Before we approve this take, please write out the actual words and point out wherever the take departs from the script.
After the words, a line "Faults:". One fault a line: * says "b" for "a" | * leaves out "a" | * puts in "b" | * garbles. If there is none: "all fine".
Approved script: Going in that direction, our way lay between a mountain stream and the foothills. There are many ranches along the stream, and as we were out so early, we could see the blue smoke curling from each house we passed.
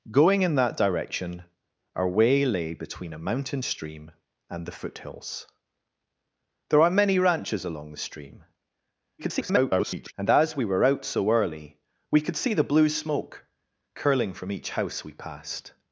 Going in that direction, our way lay between a mountain stream and the foothills. There are many ranches along the stream, [garbled] and as we were out so early, we could see the blue smoke curling from each house we passed.
Faults:
* garbles